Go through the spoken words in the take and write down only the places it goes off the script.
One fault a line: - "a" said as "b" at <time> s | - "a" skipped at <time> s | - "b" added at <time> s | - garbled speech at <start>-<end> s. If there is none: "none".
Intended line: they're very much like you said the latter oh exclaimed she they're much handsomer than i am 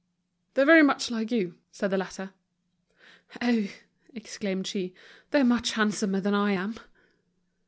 none